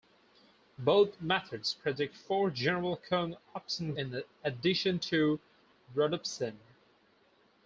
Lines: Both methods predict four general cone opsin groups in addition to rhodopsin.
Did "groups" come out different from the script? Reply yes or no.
yes